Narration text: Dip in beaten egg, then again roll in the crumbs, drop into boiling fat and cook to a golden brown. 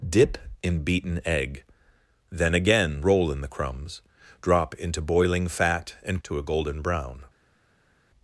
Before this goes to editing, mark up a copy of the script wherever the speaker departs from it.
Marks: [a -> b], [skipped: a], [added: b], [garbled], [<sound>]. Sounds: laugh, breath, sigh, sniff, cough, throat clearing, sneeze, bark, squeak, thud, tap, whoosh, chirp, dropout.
Dip in beaten egg, then again roll in the crumbs, drop into boiling fat and [skipped: cook] to a golden brown.